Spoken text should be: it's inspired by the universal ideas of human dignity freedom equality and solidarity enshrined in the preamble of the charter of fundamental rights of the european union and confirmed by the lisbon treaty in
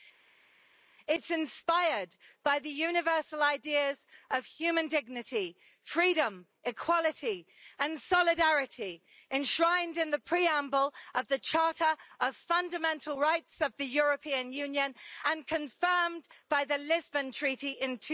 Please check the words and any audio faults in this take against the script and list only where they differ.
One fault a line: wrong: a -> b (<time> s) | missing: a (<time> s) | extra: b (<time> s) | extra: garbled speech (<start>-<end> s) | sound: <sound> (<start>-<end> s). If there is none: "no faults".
no faults